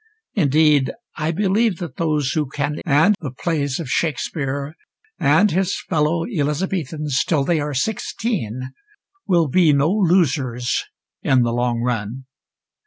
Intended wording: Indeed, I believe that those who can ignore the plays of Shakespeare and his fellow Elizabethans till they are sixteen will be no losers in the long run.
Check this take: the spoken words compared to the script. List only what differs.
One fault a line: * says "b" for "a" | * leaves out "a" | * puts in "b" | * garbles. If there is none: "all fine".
* says "and" for "ignore"